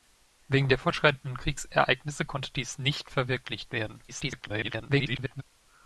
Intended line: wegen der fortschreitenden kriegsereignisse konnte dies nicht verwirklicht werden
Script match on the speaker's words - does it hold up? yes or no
no